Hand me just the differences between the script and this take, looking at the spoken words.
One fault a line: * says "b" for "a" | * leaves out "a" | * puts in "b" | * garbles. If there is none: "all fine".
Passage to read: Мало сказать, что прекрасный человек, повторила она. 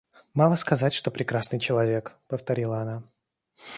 all fine